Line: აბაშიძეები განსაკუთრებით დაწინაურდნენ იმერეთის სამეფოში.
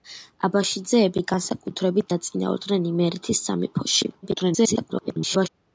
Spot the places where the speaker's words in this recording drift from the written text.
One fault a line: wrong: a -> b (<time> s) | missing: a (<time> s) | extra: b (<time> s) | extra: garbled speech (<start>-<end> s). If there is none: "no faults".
extra: garbled speech (4.2-5.5 s)